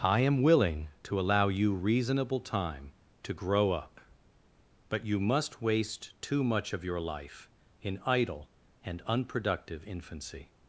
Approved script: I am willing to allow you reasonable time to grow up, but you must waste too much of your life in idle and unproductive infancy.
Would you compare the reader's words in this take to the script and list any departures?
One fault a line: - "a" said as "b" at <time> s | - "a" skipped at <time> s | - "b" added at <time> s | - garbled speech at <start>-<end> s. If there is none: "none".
none